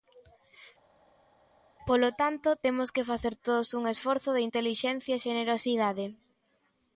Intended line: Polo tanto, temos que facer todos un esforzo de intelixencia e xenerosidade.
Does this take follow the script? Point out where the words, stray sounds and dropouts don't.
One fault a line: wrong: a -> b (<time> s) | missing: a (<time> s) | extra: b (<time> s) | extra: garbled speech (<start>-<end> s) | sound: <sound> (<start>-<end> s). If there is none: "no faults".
no faults